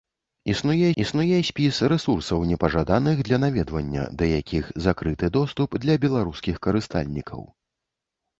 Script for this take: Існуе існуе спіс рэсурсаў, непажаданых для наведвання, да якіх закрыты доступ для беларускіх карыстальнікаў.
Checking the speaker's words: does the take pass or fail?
pass